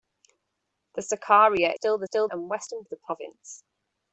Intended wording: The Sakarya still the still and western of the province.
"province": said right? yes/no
yes